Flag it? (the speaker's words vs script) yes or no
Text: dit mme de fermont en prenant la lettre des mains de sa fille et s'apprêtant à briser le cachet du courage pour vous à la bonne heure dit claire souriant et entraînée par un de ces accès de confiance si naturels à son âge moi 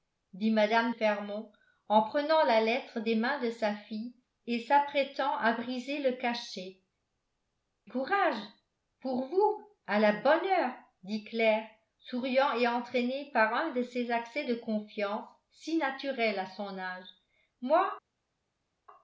yes